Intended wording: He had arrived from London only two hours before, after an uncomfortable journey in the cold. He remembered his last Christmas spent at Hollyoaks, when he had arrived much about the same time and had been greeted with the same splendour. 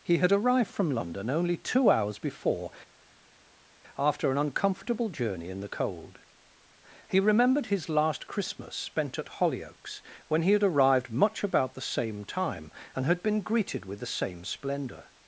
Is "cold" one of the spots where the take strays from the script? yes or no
no